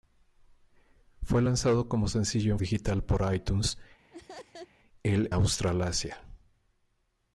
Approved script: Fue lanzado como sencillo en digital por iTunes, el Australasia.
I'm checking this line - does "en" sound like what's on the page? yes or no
yes